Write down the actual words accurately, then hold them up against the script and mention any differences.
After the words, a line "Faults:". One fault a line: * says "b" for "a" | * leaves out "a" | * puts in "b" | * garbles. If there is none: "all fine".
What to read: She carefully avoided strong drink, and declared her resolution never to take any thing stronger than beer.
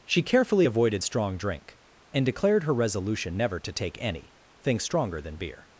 She carefully avoided strong drink, and declared her resolution never to take any thing stronger than beer.
Faults:
all fine